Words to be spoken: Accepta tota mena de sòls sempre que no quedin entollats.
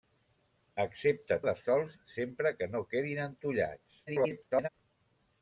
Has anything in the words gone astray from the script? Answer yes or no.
yes